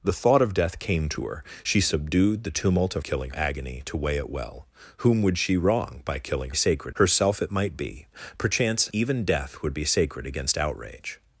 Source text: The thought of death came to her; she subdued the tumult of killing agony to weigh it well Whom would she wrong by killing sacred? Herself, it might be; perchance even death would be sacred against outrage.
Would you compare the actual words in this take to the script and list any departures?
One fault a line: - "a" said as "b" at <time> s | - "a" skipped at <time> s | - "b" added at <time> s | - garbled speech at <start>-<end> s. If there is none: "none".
none